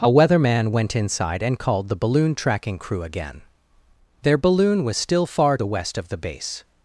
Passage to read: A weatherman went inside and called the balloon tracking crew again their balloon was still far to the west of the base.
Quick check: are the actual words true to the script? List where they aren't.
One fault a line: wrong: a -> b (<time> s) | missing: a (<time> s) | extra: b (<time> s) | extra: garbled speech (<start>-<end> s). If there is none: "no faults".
missing: to (5.6 s)